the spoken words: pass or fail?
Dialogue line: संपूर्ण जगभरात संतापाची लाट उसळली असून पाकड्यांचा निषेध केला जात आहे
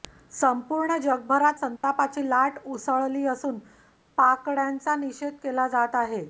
pass